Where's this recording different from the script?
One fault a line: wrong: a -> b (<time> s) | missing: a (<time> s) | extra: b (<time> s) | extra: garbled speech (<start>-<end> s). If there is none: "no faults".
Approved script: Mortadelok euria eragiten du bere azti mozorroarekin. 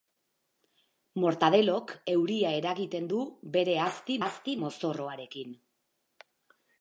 extra: azti (4.2 s)